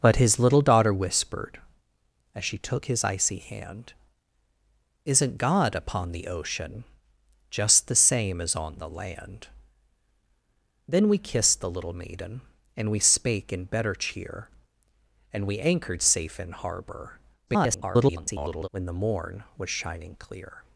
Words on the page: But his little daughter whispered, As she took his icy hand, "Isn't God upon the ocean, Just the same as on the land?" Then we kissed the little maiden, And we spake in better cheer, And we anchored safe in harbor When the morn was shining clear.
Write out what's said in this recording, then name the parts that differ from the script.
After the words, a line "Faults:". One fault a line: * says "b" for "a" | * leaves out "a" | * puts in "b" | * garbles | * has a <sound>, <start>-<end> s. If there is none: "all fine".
But his little daughter whispered, As she took his icy hand, "Isn't God upon the ocean, Just the same as on the land?" Then we kissed the little maiden, And we spake in better cheer, And we anchored safe in harbor [garbled] When the morn was shining clear.
Faults:
* garbles